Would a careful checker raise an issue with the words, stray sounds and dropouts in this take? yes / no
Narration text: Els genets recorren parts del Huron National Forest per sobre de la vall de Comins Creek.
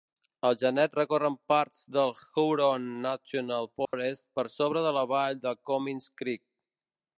yes